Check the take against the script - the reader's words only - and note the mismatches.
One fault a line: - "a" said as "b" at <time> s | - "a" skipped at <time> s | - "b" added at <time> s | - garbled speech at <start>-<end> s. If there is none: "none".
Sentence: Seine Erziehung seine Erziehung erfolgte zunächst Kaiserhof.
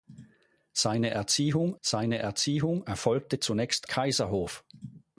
none